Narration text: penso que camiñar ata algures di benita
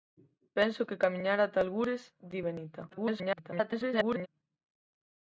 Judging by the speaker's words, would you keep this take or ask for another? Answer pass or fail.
fail